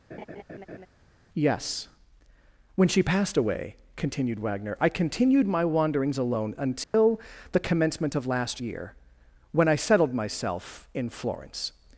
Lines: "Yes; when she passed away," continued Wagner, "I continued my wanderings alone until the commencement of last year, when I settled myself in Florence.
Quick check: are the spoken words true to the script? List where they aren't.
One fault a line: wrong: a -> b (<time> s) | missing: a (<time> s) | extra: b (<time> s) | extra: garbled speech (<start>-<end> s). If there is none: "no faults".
no faults